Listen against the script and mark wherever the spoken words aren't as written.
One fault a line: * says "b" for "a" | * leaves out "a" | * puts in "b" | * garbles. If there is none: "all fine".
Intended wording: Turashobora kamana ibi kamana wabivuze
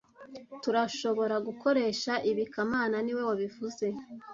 * says "gukoresha" for "kamana"
* puts in "niwe"